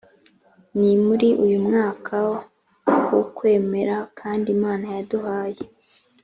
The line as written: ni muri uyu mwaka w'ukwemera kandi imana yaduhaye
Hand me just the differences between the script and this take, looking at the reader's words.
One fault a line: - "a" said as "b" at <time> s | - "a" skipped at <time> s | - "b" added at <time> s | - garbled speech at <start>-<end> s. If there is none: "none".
none